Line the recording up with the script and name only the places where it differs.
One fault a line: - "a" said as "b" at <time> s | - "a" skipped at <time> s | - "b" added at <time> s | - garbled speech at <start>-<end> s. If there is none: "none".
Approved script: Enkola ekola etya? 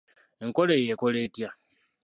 - "eyo" added at 0.8 s